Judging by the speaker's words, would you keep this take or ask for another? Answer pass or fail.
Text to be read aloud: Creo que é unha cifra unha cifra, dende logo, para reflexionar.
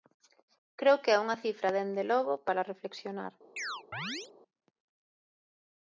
fail